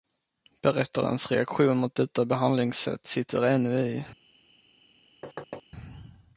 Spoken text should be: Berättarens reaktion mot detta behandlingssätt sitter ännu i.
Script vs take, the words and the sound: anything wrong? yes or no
yes